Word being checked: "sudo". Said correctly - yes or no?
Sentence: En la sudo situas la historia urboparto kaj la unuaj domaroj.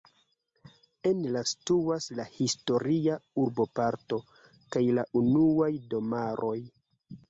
no